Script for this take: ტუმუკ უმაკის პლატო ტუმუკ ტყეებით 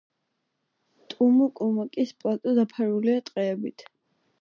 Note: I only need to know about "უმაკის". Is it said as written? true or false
true